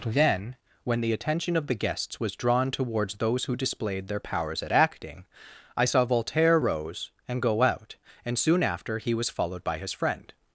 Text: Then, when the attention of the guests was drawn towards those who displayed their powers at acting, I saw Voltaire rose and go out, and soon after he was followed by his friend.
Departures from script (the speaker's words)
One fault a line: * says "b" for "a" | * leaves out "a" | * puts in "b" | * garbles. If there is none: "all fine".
all fine